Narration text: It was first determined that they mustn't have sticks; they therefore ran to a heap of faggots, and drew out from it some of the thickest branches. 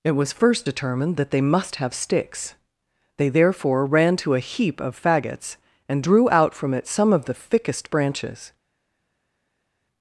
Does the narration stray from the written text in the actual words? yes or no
yes